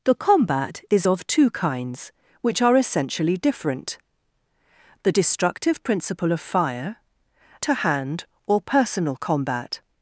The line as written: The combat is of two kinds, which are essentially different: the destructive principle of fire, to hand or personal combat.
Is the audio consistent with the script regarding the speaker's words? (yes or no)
yes